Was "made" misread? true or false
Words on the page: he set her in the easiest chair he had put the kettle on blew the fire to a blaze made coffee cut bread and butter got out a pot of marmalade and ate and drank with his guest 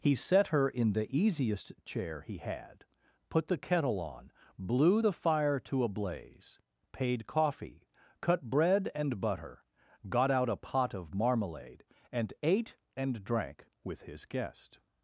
true